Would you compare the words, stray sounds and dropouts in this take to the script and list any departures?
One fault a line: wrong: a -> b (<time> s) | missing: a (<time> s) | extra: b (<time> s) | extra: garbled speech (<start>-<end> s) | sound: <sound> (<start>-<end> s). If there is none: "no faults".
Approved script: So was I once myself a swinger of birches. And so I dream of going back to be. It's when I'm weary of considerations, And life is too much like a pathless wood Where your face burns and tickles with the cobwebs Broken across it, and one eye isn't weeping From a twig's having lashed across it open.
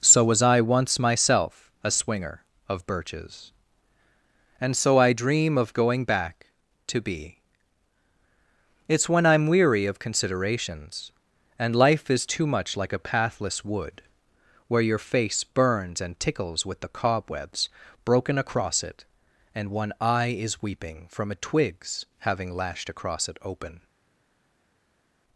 wrong: isn't -> is (20.4 s)